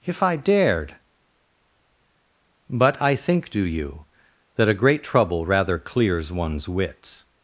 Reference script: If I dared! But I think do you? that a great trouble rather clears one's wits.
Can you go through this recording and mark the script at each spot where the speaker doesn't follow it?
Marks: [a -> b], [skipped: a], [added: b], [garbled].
If I dared! But I think do you? that a great trouble rather clears one's wits.